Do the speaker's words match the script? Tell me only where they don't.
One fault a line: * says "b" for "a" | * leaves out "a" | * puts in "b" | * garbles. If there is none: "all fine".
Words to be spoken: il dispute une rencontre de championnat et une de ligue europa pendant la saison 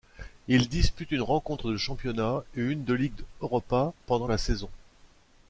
all fine